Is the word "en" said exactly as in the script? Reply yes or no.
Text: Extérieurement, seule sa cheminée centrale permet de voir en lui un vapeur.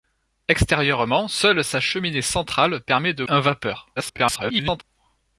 no